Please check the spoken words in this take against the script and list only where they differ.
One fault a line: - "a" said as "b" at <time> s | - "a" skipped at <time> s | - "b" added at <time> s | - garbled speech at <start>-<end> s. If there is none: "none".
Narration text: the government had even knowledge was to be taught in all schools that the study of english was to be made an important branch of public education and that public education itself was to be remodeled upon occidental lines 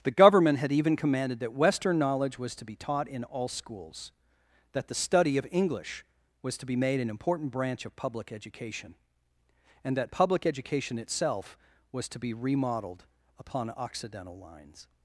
- "commanded that western" added at 0.9 s